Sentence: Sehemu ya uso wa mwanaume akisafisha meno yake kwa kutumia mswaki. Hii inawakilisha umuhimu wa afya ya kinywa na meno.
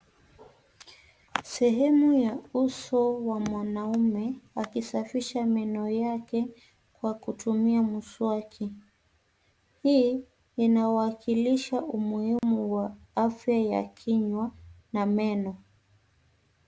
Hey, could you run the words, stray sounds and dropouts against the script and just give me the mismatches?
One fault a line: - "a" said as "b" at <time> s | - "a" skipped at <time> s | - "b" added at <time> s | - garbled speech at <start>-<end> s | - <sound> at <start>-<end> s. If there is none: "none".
- dropout at 12.4-12.4 s